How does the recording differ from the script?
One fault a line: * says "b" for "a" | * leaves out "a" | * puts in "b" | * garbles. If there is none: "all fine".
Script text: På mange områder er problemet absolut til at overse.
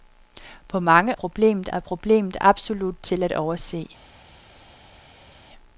* says "problemet" for "områder"